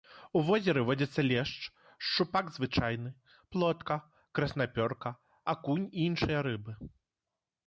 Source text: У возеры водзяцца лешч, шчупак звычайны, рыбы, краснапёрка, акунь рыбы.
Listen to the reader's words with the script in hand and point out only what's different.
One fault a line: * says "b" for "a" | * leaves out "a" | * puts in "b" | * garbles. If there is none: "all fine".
* says "плотка" for "рыбы"
* puts in "і іншыя"